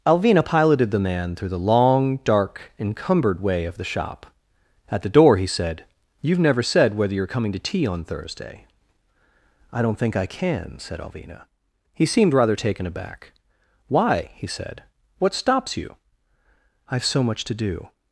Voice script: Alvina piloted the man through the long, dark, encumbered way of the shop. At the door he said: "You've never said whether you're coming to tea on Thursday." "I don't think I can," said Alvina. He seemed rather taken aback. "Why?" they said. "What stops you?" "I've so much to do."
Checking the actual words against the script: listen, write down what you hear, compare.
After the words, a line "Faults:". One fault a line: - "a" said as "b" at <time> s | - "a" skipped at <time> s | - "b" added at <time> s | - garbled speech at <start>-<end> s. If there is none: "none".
Alvina piloted the man through the long, dark, encumbered way of the shop. At the door he said: "You've never said whether you're coming to tea on Thursday." "I don't think I can," said Alvina. He seemed rather taken aback. "Why?" he said. "What stops you?" "I've so much to do."
Faults:
- "they" said as "he" at 14.4 s